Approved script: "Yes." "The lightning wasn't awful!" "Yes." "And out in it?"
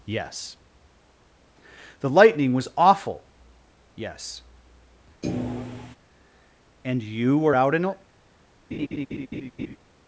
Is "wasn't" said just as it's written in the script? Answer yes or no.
no